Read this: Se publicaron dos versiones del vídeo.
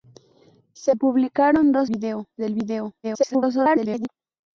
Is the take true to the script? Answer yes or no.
no